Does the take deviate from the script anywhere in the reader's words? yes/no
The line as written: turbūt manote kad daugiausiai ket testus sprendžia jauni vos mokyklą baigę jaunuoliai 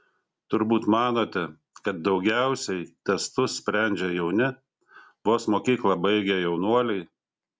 yes